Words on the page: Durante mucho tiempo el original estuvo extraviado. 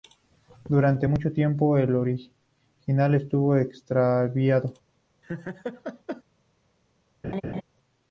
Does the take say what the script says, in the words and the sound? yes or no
no